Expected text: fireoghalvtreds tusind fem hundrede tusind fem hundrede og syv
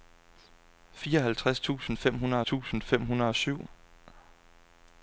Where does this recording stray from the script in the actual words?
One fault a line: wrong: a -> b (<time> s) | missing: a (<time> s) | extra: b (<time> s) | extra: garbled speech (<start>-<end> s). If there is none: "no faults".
no faults